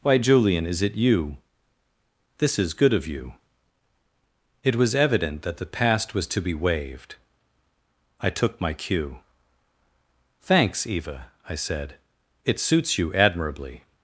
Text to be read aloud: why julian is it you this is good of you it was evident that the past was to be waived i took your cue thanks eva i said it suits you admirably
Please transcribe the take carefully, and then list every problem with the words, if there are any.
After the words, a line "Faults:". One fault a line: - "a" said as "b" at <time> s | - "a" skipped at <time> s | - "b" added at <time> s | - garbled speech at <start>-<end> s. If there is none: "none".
why julian is it you this is good of you it was evident that the past was to be waived i took my cue thanks eva i said it suits you admirably
Faults:
- "your" said as "my" at 8.6 s